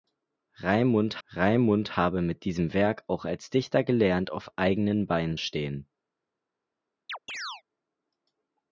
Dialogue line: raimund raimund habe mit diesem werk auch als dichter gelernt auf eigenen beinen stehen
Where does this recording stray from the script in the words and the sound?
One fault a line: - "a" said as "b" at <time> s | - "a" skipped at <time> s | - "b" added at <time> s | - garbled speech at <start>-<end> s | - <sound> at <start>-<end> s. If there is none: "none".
- chirp at 7.1-7.6 s